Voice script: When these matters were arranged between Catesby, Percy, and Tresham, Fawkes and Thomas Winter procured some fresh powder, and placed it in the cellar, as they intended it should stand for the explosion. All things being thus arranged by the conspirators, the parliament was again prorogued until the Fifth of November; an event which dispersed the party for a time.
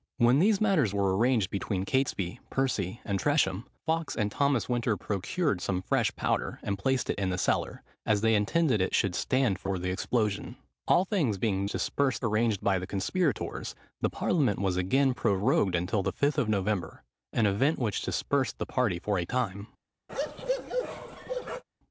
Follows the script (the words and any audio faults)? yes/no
no